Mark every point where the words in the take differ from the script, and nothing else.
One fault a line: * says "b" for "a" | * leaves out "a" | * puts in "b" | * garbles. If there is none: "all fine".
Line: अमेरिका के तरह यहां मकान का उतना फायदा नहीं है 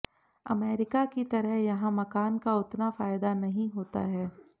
* says "की" for "के"
* puts in "होता"